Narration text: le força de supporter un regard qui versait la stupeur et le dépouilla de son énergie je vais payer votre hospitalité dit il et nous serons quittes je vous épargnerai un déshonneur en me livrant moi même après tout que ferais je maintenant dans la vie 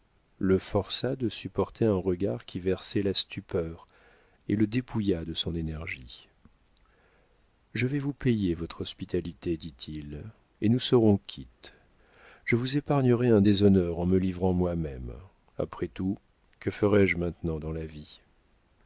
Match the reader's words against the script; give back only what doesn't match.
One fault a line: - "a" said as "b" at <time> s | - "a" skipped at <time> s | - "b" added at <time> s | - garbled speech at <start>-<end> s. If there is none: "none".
- "vous" added at 8.0 s